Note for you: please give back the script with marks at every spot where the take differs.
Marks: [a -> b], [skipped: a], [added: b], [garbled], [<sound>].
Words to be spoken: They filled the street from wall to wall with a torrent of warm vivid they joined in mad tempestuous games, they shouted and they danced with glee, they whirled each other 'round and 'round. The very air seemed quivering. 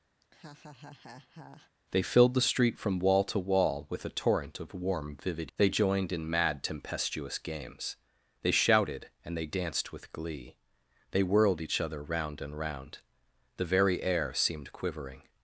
[laugh] They filled the street from wall to wall with a torrent of warm vivid they joined in mad tempestuous games, they shouted and they danced with glee, they whirled each other 'round and 'round. The very air seemed quivering.